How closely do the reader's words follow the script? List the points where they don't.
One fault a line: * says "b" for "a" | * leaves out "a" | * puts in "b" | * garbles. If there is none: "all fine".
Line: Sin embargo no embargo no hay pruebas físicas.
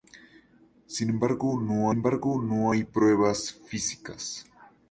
all fine